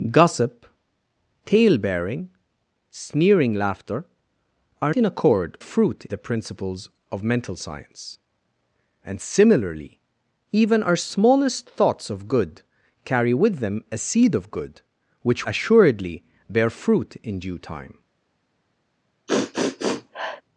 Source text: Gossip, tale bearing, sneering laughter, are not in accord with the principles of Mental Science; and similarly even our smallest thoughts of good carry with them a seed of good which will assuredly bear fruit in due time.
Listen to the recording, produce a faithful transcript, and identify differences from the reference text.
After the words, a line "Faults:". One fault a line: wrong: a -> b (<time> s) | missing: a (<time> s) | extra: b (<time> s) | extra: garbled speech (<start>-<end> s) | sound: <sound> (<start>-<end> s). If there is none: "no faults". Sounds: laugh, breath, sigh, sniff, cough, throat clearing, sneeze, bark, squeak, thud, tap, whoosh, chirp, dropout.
Gossip, tale bearing, sneering laughter, are in accord fruit the principles of Mental Science; and similarly even our smallest thoughts of good carry with them a seed of good which assuredly bear fruit in due time.
Faults:
missing: not (5.0 s)
wrong: with -> fruit (5.6 s)
missing: will (15.4 s)
sound: sniff (19.3-20.4 s)